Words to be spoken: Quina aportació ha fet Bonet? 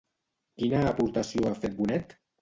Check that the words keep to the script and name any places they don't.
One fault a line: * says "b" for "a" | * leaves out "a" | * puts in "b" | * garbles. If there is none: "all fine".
all fine